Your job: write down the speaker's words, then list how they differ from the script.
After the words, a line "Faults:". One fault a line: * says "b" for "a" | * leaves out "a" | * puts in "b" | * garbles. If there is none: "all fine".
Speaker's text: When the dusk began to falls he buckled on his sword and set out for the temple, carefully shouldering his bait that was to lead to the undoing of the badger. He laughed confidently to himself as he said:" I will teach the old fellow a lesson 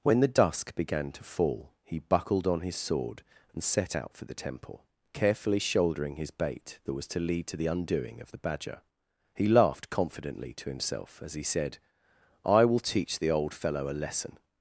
When the dusk began to fall he buckled on his sword and set out for the temple, carefully shouldering his bait that was to lead to the undoing of the badger. He laughed confidently to himself as he said:" I will teach the old fellow a lesson
Faults:
* says "fall" for "falls"